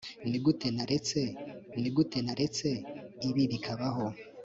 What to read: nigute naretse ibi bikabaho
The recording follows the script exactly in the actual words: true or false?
false